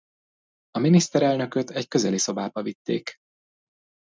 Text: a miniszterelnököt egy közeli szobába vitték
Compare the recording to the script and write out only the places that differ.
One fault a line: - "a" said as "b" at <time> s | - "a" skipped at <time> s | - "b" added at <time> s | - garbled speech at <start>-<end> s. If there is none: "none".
none